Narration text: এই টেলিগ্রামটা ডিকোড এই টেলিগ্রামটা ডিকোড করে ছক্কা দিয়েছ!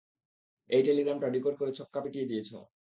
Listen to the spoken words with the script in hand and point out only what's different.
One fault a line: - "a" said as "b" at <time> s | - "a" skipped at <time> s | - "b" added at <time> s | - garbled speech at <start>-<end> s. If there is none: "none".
- "এই টেলিগ্রামটা ডিকোড" skipped at 1.5 s
- "পিটিয়ে" added at 2.0 s